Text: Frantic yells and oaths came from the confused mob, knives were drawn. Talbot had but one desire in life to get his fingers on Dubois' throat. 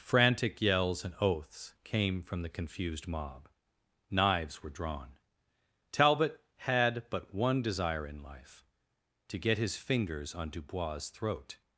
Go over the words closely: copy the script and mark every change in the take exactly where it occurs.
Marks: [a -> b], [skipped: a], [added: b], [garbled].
Frantic yells and oaths came from the confused mob, knives were drawn. Talbot had but one desire in life to get his fingers on Dubois' throat.